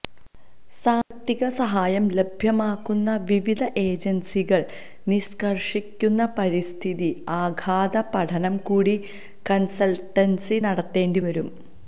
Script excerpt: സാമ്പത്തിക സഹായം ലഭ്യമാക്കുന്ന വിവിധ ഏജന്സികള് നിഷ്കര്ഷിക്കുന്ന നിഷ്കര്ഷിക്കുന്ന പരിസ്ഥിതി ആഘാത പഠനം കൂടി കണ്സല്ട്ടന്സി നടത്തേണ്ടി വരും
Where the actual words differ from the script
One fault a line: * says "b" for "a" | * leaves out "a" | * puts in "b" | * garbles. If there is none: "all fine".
* leaves out "നിഷ്കര്ഷിക്കുന്ന"